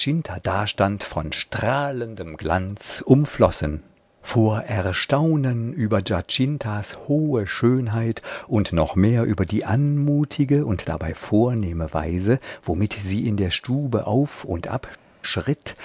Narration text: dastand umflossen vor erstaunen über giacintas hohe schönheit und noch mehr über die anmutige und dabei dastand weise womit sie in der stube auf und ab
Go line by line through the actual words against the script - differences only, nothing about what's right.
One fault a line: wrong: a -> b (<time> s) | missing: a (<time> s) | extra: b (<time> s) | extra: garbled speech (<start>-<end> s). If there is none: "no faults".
extra: von strahlendem glanz (1.0 s)
wrong: dastand -> vornehme (11.1 s)